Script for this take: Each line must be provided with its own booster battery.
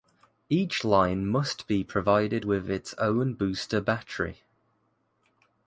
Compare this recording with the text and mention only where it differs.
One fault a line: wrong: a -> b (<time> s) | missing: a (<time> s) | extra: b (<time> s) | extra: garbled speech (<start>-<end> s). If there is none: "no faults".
no faults